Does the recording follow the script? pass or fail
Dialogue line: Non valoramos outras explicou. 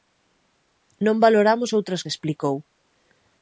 pass